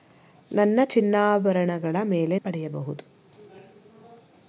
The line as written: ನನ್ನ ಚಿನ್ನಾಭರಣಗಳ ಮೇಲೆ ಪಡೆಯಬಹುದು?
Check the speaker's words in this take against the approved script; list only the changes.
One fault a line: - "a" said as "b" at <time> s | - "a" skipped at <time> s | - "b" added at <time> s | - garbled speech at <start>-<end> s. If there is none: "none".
none